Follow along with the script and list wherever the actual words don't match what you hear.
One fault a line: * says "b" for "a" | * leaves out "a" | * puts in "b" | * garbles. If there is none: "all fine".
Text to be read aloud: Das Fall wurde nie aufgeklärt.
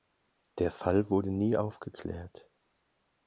* says "Der" for "Das"